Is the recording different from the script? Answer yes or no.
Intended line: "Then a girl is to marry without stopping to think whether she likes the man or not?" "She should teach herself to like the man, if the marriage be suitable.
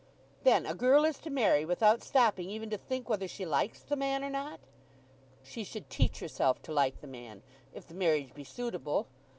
yes